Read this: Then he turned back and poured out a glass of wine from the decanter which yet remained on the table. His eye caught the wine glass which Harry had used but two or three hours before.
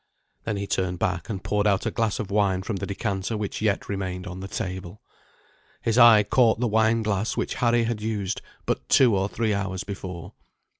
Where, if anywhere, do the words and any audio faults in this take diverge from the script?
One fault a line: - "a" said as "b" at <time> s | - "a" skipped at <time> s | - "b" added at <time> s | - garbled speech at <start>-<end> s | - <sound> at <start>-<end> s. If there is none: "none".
none